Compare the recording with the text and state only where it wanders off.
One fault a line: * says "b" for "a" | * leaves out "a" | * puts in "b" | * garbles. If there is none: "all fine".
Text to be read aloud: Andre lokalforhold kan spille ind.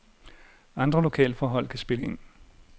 all fine